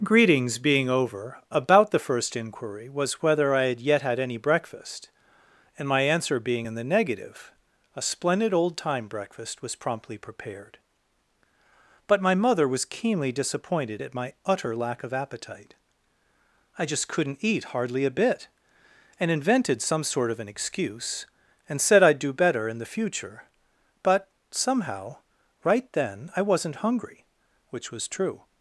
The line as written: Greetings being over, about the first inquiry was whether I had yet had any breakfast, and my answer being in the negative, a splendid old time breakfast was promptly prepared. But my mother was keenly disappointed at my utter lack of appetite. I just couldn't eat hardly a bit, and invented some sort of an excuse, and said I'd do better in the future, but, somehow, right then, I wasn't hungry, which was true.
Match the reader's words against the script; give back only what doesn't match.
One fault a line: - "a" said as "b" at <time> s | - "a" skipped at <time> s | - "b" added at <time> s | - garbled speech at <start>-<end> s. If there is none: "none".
none